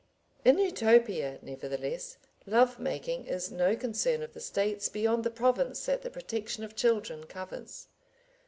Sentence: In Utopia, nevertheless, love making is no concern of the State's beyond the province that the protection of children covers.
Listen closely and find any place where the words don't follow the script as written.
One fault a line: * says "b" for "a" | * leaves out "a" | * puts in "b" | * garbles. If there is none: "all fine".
all fine